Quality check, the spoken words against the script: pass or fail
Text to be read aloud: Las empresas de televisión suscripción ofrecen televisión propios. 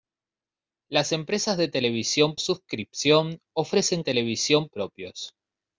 pass